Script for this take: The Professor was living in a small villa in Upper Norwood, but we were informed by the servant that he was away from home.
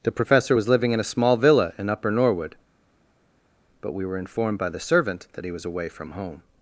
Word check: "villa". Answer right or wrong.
right